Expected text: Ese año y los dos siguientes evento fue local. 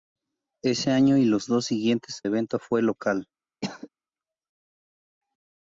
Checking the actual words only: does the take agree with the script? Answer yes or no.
yes